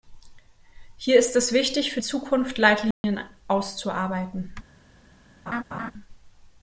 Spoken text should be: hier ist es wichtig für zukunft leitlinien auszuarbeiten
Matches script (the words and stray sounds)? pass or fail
fail